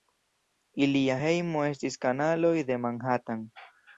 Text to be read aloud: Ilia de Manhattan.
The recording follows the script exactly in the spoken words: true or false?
false